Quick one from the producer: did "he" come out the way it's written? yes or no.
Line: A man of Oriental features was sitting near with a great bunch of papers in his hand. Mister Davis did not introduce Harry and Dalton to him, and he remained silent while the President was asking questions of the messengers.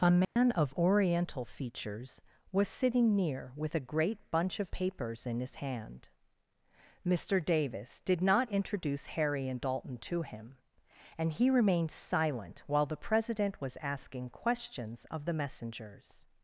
yes